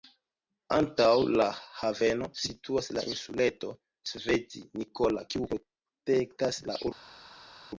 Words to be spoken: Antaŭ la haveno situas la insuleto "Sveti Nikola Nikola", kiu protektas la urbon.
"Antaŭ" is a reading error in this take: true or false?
false